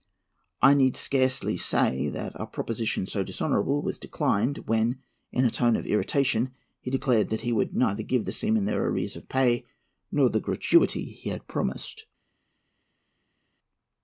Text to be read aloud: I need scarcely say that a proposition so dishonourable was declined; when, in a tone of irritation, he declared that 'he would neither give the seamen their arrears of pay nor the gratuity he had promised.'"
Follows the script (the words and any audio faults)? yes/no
yes